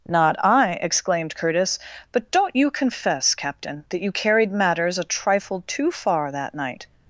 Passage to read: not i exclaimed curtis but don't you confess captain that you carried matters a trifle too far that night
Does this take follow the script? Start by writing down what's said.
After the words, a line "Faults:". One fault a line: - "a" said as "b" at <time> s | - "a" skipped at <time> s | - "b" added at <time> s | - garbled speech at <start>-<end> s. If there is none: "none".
not i exclaimed curtis but don't you confess captain that you carried matters a trifle too far that night
Faults:
none